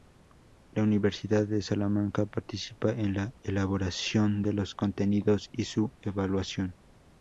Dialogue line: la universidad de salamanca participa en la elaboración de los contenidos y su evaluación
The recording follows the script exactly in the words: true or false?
true